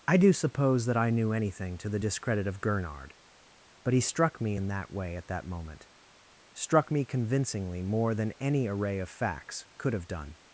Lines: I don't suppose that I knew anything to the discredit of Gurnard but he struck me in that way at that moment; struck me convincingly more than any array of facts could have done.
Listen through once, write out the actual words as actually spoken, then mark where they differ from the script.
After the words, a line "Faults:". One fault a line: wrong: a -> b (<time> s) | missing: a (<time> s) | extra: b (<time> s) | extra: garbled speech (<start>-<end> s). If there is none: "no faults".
I do suppose that I knew anything to the discredit of Gurnard but he struck me in that way at that moment; struck me convincingly more than any array of facts could have done.
Faults:
wrong: don't -> do (0.2 s)